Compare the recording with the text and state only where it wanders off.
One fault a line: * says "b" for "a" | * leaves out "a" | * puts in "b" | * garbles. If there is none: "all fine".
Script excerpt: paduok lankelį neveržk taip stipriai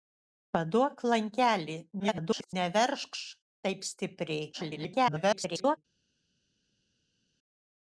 * garbles
* garbles